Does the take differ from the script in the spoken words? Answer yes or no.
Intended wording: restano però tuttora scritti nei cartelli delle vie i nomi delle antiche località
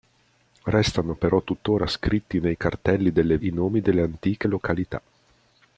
yes